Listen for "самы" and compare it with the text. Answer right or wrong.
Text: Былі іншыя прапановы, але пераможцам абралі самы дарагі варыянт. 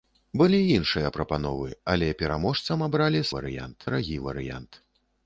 wrong